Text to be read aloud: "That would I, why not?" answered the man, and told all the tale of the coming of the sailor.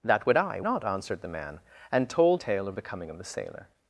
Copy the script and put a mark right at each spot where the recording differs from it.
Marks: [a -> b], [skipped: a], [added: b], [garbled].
"That would I, [skipped: why] not?" answered the man, and told [skipped: all the] tale of the coming of the sailor.